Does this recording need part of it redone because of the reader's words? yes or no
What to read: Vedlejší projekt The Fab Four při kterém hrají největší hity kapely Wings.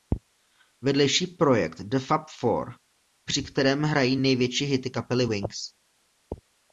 no